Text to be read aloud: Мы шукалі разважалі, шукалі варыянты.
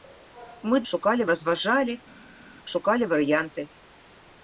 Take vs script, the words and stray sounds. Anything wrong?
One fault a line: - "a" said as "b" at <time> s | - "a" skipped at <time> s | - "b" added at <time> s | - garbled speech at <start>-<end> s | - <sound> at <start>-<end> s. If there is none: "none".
none